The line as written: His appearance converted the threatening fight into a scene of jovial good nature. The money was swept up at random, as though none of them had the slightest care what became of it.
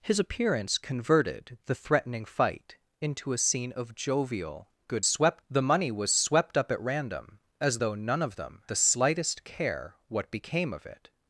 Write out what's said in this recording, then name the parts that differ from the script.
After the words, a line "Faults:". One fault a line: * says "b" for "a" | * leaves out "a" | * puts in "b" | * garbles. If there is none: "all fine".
His appearance converted the threatening fight into a scene of jovial good swept. The money was swept up at random, as though none of them the slightest care what became of it.
Faults:
* says "swept" for "nature"
* leaves out "had"